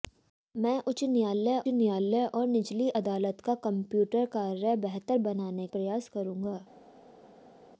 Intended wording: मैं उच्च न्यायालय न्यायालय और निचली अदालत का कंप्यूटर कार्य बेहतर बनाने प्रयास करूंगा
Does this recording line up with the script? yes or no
yes